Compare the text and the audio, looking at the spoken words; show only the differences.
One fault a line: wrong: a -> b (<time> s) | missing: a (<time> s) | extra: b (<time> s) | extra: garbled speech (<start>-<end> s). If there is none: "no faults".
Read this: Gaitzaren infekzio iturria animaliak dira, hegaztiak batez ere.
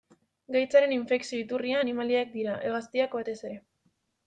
no faults